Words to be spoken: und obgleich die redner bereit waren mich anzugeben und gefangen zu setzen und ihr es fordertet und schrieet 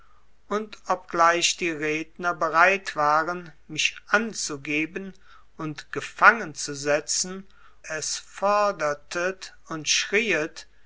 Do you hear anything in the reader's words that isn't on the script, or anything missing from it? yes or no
yes